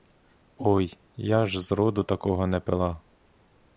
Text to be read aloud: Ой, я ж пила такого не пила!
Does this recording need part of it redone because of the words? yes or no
yes